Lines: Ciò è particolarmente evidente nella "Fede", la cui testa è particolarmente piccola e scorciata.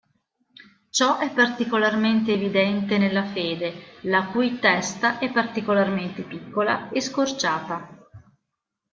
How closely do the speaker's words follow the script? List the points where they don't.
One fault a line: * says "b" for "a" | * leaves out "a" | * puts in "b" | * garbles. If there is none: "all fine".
all fine